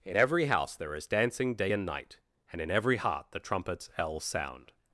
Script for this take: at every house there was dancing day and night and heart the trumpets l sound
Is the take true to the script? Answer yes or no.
no